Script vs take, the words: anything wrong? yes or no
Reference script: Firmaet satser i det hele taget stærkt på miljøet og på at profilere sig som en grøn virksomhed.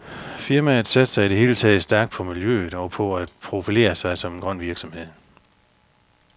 no